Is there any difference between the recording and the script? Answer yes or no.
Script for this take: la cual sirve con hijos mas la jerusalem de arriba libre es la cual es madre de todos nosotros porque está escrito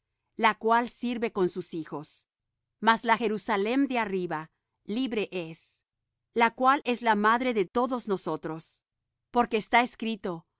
yes